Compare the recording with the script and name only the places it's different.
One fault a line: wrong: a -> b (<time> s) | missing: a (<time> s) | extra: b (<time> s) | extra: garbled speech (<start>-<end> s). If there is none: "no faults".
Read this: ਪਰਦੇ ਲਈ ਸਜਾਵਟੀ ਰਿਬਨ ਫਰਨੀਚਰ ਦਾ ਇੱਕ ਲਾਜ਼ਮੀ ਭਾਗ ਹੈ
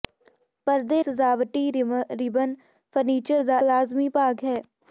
missing: ਲਈ (1.0 s)
missing: ਇੱਕ (3.6 s)